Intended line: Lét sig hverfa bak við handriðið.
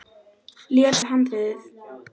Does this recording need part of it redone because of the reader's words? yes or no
yes